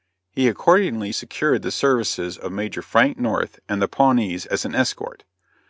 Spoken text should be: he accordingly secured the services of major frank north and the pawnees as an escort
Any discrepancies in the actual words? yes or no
no